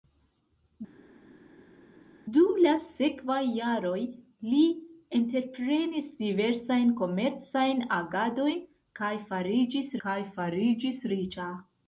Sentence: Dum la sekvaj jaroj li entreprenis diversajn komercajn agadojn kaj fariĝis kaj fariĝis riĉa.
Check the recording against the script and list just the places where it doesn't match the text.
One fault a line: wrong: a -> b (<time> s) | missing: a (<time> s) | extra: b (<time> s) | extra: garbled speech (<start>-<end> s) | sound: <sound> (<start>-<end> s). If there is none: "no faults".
no faults